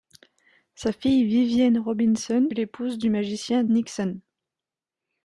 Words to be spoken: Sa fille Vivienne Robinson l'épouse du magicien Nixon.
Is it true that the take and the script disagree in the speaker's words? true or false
false